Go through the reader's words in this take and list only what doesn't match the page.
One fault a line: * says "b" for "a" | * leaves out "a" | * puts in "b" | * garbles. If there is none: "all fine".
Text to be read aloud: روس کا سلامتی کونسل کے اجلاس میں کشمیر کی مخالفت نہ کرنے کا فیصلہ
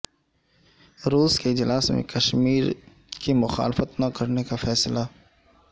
* leaves out "کا سلامتی کونسل"